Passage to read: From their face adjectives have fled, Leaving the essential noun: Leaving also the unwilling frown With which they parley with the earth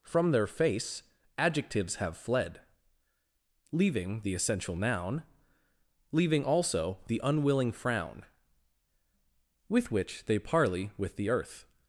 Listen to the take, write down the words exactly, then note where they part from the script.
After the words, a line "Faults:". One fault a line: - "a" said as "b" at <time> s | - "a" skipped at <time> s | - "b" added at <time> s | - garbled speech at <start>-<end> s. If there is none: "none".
From their face adjectives have fled, Leaving the essential noun: Leaving also the unwilling frown With which they parley with the earth
Faults:
none